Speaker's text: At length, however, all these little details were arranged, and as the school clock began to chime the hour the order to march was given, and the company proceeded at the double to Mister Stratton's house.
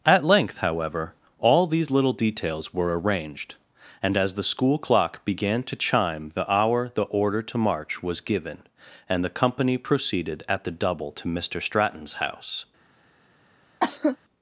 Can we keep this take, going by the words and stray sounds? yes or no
no